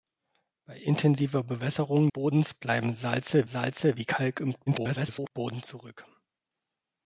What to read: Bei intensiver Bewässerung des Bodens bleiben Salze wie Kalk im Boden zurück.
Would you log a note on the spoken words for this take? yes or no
yes